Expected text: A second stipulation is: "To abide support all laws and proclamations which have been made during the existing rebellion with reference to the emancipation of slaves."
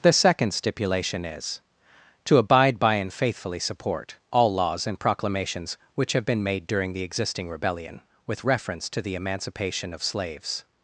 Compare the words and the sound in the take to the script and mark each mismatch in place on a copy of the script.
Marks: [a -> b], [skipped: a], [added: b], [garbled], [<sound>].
[A -> The] second stipulation is: "To abide [added: by and faithfully] support all laws and proclamations which have been made during the existing rebellion with reference to the emancipation of slaves."